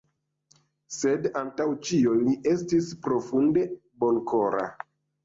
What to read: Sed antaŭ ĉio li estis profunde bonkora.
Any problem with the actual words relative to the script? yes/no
no